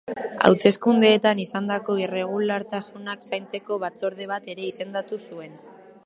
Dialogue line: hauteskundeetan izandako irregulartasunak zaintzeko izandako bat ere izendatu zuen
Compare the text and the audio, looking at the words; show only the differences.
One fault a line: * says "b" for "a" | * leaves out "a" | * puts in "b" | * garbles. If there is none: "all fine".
* says "batzorde" for "izandako"